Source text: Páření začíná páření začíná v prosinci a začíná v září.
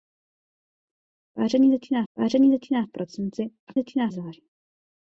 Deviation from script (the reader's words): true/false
false